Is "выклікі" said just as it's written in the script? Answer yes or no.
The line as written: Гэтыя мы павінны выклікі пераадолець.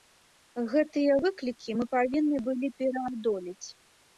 no